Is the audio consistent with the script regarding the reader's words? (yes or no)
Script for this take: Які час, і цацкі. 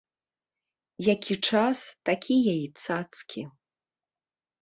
no